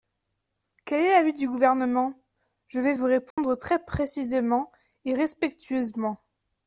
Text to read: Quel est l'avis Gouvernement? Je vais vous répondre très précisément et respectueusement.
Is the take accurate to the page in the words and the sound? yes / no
no